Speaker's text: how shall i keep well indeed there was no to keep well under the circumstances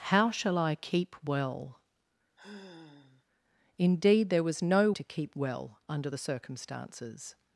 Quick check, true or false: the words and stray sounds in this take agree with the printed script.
false